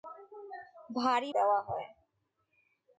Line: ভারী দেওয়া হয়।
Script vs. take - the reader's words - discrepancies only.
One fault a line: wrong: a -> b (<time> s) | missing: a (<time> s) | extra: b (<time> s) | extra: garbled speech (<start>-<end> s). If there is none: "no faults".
no faults